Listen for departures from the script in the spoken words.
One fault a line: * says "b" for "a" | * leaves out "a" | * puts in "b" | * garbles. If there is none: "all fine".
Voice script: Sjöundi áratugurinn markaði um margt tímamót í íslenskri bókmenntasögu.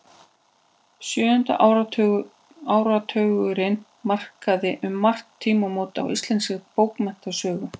all fine